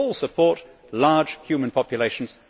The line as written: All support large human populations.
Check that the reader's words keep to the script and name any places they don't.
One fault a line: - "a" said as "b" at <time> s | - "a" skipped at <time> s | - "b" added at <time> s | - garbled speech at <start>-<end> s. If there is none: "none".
none